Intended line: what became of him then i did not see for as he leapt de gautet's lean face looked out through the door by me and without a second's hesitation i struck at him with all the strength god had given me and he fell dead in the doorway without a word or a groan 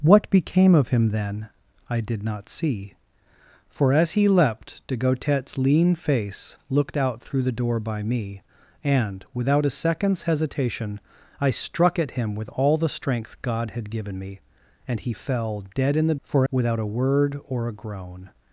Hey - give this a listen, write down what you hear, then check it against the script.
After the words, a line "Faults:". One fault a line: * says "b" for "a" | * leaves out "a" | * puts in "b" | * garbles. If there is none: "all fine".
what became of him then i did not see for as he leapt de gautet's lean face looked out through the door by me and without a second's hesitation i struck at him with all the strength god had given me and he fell dead in the for without a word or a groan
Faults:
* says "for" for "doorway"